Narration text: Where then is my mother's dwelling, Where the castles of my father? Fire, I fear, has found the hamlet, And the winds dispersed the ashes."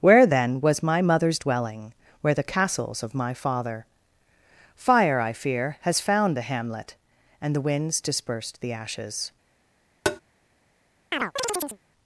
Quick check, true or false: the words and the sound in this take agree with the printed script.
false